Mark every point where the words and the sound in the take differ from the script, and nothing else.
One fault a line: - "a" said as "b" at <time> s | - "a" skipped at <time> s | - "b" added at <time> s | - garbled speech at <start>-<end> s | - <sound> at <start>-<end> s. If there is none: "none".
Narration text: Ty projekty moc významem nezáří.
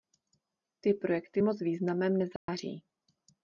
- dropout at 2.4-2.5 s